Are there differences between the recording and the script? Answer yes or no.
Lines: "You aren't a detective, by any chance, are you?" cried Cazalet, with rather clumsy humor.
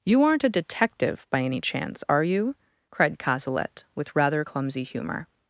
no